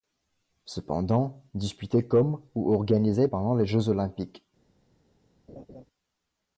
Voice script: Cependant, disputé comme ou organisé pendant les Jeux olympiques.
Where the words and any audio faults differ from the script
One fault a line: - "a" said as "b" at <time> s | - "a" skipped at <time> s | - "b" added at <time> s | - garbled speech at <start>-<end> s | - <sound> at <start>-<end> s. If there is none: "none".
- laugh at 5.5-5.8 s